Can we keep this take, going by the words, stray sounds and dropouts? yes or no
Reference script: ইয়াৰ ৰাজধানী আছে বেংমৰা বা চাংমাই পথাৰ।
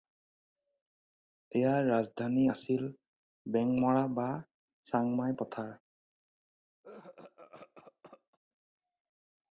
no